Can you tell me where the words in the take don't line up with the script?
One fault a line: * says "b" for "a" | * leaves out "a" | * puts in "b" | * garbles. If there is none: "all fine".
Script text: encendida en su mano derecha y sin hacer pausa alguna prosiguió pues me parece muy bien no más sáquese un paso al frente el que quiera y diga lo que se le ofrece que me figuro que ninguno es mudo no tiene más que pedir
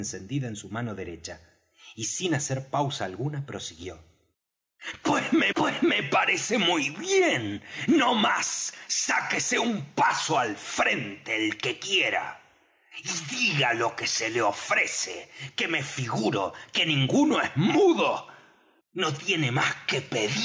* puts in "pues me"